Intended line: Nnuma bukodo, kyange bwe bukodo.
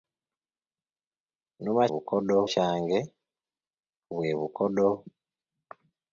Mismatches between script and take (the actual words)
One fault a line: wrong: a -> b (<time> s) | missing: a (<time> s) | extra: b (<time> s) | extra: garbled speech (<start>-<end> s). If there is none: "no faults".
no faults